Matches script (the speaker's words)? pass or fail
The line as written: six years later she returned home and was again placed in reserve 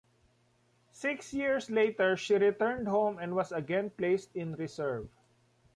pass